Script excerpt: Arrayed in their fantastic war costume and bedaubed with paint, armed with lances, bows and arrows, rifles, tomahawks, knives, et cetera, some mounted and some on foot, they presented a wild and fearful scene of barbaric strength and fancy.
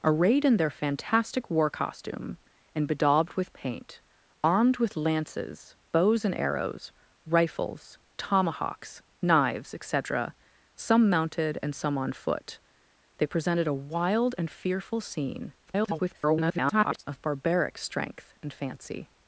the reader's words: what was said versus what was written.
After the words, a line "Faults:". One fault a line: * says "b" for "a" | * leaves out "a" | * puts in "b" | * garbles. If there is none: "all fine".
Arrayed in their fantastic war costume and bedaubed with paint, armed with lances, bows and arrows, rifles, tomahawks, knives, et cetera, some mounted and some on foot, they presented a wild and fearful scene [garbled] of barbaric strength and fancy.
Faults:
* garbles